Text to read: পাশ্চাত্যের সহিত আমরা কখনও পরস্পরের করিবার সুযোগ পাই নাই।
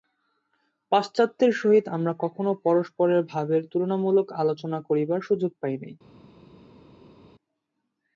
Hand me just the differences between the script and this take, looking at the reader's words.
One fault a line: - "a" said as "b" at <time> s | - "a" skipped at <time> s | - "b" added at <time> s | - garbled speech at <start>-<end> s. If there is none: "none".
- "ভাবের তুলনামূলক আলোচনা" added at 3.3 s